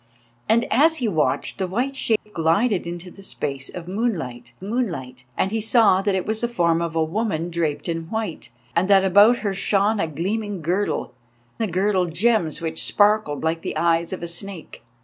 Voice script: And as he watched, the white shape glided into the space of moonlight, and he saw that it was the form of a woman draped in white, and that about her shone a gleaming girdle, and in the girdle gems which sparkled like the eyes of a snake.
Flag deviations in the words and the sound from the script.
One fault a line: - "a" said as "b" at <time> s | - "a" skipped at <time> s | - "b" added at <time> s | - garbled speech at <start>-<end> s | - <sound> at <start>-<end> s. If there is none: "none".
- dropout at 2.2-2.3 s
- "moonlight" added at 4.6 s
- "and in" skipped at 11.1 s